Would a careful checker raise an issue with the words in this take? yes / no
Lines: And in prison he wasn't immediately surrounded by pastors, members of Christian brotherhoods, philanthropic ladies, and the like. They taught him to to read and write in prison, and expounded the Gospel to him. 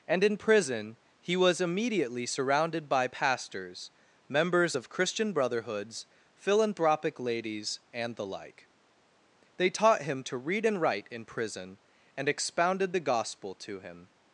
yes